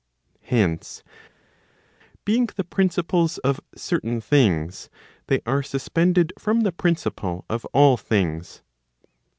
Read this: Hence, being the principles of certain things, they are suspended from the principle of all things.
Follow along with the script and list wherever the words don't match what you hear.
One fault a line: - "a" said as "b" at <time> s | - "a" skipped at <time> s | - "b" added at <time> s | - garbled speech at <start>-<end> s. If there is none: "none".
none